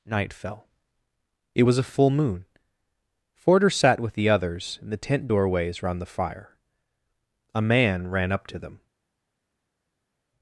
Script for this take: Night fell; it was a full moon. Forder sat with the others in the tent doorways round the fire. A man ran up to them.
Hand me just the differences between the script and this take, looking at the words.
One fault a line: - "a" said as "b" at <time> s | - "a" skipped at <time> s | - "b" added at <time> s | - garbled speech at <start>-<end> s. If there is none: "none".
none